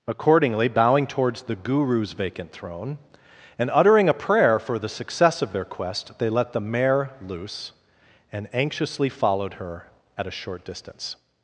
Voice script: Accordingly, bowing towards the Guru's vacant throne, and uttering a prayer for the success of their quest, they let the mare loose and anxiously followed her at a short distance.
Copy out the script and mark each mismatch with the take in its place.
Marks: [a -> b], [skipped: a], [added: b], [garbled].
Accordingly, bowing towards the Guru's vacant throne, and uttering a prayer for the success of their quest, they let the mare loose and anxiously followed her at a short distance.